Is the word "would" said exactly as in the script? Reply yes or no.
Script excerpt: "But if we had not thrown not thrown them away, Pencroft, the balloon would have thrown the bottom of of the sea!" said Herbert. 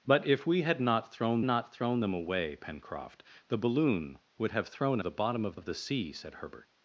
yes